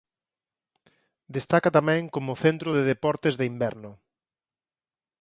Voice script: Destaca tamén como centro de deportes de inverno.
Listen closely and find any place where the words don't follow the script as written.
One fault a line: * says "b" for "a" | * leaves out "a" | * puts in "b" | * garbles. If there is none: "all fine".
all fine